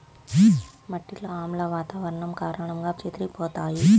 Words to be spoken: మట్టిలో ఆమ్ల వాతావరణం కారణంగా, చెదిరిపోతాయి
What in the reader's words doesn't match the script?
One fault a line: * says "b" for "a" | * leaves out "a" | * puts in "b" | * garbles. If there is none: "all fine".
all fine